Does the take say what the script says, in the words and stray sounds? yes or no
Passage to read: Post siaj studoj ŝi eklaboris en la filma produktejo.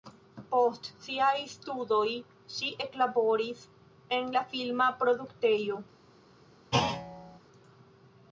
no